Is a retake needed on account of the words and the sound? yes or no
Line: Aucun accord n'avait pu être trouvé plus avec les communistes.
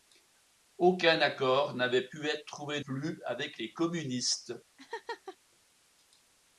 yes